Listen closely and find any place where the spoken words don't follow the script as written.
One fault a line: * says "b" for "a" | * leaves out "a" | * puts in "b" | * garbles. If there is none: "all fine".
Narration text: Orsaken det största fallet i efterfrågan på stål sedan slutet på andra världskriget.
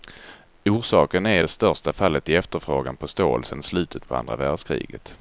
* puts in "är"